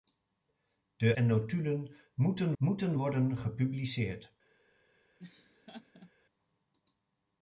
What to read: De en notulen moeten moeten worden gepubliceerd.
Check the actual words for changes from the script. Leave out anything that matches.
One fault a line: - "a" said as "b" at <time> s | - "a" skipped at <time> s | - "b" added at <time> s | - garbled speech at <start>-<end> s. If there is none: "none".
none